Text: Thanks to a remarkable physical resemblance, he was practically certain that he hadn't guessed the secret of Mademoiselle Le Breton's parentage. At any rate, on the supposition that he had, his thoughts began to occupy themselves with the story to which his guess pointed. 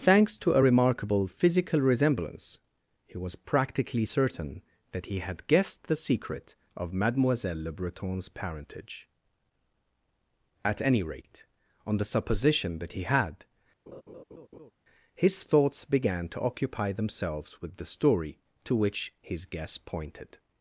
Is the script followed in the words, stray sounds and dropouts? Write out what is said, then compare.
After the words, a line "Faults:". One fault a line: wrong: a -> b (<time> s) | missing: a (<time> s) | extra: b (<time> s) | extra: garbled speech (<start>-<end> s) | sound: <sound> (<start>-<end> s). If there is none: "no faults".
Thanks to a remarkable physical resemblance, he was practically certain that he had guessed the secret of Mademoiselle Le Breton's parentage. At any rate, on the supposition that he had, his thoughts began to occupy themselves with the story to which his guess pointed.
Faults:
wrong: hadn't -> had (5.2 s)
sound: laugh (13.9-14.7 s)